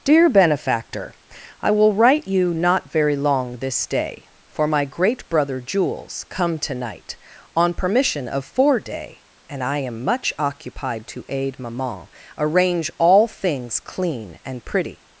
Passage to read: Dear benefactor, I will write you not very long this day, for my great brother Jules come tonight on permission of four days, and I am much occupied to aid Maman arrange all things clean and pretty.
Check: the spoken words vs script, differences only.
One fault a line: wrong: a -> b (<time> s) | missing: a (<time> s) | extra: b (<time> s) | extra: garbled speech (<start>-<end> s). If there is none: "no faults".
wrong: days -> day (8.8 s)